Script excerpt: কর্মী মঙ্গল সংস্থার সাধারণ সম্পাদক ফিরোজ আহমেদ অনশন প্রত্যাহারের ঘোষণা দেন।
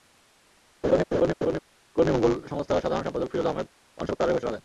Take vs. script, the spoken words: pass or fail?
pass